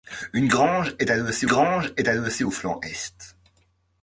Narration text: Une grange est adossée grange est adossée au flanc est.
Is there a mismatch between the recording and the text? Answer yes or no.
no